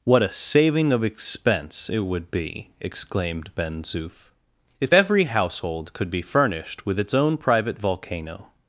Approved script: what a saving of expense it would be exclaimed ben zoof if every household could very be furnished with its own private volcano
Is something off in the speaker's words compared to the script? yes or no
yes